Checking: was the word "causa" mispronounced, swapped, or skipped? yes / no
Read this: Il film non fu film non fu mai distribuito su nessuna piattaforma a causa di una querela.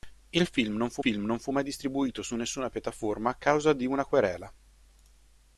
no